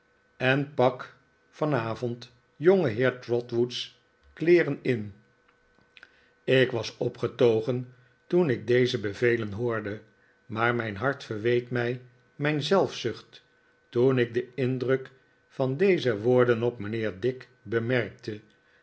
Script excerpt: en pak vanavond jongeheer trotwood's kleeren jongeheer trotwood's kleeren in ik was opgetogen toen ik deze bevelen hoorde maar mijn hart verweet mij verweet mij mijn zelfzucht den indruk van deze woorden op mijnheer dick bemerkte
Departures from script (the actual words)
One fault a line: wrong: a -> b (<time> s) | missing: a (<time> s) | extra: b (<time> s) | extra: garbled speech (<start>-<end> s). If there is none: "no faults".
missing: jongeheer trotwood's kleeren (4.8 s)
wrong: verweet mij mijn zelfzucht -> mijn zelfzucht toen ik (12.4 s)